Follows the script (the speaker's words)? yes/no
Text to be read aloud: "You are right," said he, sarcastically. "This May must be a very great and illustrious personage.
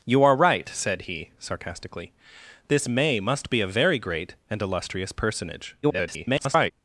no